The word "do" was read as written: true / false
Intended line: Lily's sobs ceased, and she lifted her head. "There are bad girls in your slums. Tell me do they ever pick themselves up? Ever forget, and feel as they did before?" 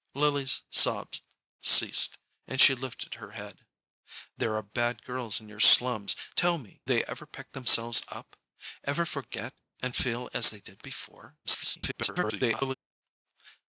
false